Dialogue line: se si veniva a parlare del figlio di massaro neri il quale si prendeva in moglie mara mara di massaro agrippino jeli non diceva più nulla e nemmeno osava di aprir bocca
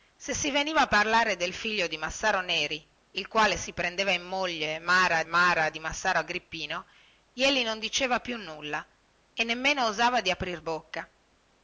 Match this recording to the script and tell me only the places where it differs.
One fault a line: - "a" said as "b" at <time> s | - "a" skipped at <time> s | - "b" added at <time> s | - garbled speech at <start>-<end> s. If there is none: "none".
none